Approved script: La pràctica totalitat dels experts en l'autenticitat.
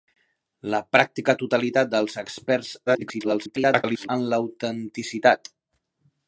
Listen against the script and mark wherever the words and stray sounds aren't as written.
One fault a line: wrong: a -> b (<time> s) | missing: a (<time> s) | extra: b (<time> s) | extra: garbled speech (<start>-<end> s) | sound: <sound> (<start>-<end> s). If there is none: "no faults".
extra: garbled speech (2.9-4.1 s)